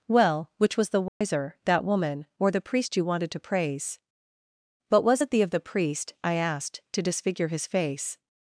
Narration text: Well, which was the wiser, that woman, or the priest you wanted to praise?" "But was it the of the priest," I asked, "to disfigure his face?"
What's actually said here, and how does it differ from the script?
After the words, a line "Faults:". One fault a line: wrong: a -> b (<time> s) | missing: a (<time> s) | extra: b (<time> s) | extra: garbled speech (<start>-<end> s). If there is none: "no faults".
Well, which was the wiser, that woman, or the priest you wanted to praise?" "But was it the of the priest," I asked, "to disfigure his face?"
Faults:
no faults